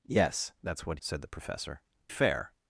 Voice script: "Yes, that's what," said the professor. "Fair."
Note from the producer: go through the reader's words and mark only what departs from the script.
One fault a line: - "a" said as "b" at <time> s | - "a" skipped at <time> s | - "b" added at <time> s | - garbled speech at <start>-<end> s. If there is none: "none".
none